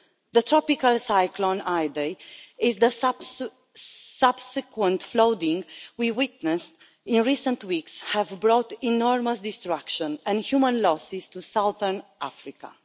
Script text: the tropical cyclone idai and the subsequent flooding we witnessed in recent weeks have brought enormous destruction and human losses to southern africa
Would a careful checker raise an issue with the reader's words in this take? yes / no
no